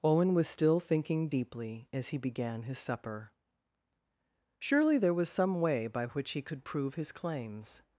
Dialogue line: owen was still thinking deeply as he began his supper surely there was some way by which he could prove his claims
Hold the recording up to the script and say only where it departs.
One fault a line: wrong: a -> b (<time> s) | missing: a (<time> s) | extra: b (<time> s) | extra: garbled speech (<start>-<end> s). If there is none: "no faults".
no faults